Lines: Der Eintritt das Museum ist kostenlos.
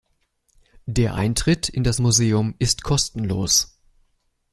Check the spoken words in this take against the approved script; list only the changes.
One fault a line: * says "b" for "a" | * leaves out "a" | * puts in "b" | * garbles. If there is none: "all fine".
* puts in "in"